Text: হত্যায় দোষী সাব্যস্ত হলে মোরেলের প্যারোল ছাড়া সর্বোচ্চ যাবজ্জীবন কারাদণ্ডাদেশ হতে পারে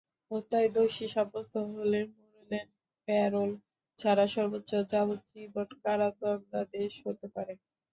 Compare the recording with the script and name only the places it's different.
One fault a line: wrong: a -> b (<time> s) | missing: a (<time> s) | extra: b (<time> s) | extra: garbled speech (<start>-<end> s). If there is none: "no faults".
no faults